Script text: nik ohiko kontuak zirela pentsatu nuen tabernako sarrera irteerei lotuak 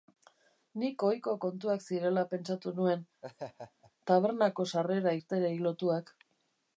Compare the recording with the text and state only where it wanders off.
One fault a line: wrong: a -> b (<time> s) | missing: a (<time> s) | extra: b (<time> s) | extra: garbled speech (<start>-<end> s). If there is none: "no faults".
no faults